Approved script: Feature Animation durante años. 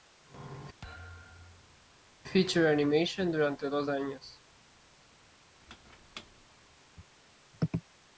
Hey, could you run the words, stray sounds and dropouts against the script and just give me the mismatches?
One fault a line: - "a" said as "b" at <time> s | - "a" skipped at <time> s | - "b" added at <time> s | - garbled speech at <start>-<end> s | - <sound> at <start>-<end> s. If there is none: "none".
- thud at 0.8-1.9 s
- "dos" added at 3.7 s
- squeak at 5.6-6.5 s